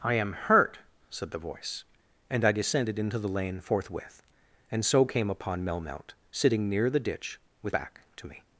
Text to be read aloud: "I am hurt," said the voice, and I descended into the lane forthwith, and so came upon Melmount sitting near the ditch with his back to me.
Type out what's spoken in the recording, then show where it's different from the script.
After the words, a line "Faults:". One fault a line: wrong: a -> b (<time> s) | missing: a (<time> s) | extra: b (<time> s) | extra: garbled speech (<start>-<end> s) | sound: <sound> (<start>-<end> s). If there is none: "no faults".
"I am hurt," said the voice, and I descended into the lane forthwith, and so came upon Melmount sitting near the ditch with back to me.
Faults:
missing: his (7.8 s)